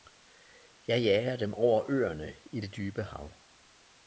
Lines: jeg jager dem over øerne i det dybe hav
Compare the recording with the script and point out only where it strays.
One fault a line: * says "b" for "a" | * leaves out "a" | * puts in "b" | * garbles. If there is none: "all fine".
all fine